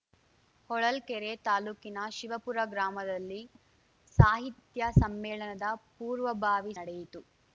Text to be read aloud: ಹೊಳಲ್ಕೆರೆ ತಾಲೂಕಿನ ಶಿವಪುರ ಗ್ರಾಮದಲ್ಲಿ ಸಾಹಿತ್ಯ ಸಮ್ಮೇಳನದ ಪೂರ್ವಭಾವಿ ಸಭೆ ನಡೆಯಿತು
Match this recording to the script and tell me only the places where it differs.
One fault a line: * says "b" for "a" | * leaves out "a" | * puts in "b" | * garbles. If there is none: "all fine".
* leaves out "ಸಭೆ"